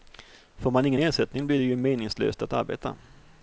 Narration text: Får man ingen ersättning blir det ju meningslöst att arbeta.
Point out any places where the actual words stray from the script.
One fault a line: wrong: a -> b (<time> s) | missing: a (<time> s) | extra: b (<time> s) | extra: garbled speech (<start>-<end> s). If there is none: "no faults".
no faults